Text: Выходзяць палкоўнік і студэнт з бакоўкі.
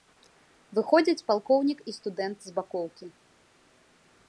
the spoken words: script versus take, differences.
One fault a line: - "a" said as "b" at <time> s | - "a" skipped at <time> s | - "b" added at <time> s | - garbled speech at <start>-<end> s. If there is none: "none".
none